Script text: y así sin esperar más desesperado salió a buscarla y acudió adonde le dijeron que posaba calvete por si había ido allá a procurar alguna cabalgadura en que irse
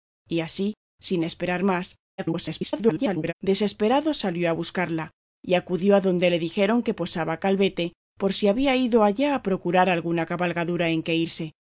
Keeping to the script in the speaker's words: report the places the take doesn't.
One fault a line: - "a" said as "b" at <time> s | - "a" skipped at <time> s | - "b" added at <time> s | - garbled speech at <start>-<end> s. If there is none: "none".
- garbled speech at 2.2-3.3 s